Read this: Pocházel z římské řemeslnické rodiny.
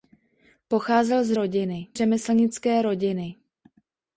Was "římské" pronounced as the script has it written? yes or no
no